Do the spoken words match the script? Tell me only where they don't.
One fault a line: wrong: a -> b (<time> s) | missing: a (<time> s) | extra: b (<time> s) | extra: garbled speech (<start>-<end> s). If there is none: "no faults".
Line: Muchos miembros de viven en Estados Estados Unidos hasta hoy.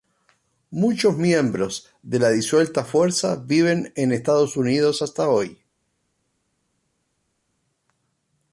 extra: la disuelta fuerza (2.2 s)
missing: Estados (4.6 s)